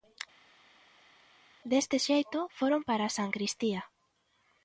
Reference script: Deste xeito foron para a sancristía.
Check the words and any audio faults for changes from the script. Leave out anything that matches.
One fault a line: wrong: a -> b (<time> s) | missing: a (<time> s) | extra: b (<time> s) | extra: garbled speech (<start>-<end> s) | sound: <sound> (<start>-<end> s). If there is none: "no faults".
no faults